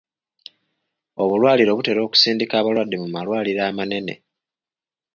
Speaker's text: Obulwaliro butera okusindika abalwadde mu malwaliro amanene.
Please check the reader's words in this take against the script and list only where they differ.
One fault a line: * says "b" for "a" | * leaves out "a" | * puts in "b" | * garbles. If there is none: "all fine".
all fine